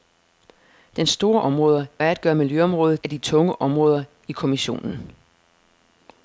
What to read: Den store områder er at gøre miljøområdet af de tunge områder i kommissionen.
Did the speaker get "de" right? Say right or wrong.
right